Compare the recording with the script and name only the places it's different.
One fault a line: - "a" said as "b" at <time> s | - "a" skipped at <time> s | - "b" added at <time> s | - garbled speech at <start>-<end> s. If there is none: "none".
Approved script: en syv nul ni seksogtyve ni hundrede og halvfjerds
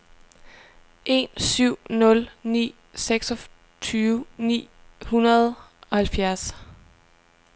none